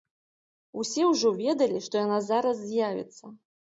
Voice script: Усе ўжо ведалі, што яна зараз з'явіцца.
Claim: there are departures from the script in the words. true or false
false